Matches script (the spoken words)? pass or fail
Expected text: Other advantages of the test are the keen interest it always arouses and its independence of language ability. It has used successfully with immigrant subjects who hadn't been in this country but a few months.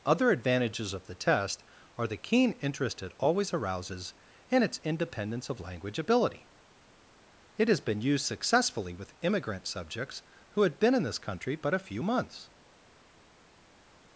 fail